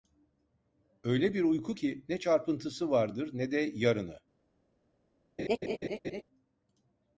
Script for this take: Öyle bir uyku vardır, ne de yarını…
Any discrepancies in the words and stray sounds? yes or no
yes